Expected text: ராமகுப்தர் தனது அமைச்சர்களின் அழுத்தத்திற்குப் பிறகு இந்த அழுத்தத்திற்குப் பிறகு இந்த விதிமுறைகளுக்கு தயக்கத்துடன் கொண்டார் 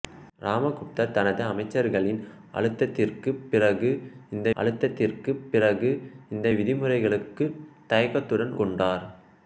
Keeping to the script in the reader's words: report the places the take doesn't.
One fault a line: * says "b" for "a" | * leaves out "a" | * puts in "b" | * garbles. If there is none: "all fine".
all fine